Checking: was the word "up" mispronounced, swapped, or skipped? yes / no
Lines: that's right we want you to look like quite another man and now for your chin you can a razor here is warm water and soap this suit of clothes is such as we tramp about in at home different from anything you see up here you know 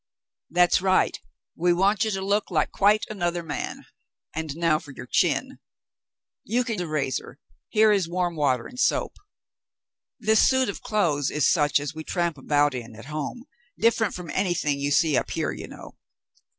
no